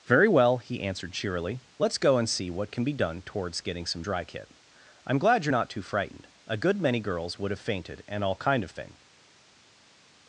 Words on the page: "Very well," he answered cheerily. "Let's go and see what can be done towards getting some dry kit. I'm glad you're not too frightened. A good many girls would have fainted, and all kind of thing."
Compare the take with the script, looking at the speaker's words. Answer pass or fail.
pass